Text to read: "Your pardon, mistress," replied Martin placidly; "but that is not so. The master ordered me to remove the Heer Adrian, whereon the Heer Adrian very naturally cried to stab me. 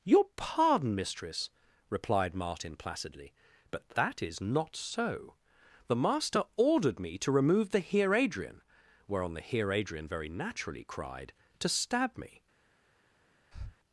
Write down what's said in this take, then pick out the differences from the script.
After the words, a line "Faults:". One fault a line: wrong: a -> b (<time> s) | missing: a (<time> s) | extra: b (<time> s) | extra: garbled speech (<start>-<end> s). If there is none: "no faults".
"Your pardon, mistress," replied Martin placidly; "but that is not so. The master ordered me to remove the Heer Adrian, whereon the Heer Adrian very naturally cried to stab me.
Faults:
no faults